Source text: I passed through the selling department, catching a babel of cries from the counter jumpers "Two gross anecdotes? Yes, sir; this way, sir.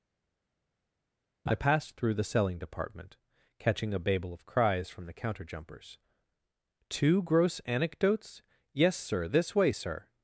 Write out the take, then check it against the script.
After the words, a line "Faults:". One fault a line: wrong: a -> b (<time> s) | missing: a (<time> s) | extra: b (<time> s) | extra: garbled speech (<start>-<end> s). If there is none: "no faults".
I passed through the selling department, catching a babel of cries from the counter jumpers "Two gross anecdotes? Yes, sir; this way, sir.
Faults:
no faults